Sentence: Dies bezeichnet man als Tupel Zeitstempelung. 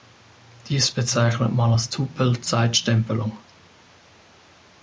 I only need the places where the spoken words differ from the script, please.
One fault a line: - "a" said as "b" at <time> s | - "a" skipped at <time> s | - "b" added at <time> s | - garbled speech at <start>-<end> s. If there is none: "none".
none